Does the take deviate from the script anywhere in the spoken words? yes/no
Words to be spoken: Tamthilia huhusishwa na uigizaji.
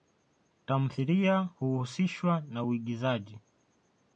no